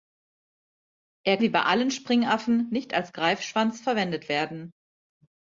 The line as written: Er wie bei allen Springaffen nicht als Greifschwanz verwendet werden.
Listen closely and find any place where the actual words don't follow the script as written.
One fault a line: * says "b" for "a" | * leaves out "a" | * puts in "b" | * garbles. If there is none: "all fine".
all fine